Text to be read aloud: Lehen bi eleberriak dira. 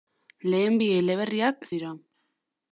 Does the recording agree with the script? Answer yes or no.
yes